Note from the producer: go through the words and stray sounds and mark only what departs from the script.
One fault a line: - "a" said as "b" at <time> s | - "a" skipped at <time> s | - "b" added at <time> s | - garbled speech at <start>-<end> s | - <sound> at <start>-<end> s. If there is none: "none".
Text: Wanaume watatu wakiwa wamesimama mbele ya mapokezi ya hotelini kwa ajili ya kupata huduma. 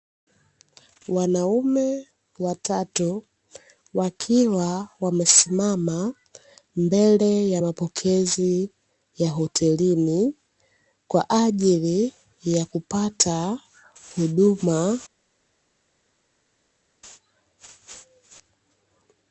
none